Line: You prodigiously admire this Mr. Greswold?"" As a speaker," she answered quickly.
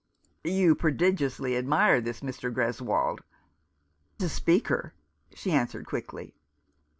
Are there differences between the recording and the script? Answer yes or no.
yes